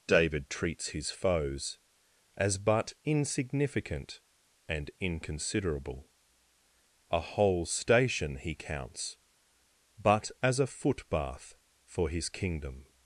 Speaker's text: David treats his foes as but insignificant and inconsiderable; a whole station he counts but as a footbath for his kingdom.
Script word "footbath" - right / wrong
right